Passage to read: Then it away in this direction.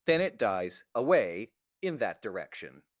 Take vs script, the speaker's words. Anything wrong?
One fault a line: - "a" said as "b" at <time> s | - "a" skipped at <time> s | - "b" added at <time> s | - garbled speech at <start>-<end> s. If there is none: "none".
- "dies" added at 0.4 s
- "this" said as "that" at 2.0 s